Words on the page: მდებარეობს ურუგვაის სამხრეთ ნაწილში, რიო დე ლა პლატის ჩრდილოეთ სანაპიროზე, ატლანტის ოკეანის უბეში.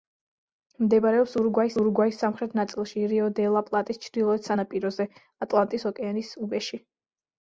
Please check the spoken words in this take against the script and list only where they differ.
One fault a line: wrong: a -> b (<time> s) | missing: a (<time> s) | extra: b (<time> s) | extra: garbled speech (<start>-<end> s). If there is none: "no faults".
extra: ურუგვაის (1.8 s)